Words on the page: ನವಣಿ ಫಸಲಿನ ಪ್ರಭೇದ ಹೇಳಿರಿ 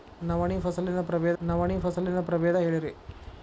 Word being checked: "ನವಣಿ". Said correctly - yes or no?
yes